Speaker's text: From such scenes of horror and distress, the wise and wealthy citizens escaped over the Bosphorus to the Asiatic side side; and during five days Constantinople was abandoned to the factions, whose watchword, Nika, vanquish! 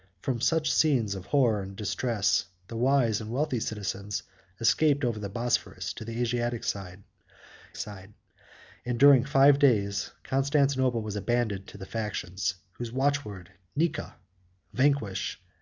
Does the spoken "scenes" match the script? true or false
true